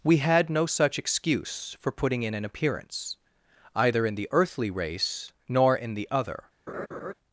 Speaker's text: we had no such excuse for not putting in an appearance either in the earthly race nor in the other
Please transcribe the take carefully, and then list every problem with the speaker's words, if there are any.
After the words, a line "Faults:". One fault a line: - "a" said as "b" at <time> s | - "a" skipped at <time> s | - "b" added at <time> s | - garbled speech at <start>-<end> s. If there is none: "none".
we had no such excuse for putting in an appearance either in the earthly race nor in the other
Faults:
- "not" skipped at 1.9 s